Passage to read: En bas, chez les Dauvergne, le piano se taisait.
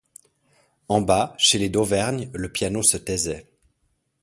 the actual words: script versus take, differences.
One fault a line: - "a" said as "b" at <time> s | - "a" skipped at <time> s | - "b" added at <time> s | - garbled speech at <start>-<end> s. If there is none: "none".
none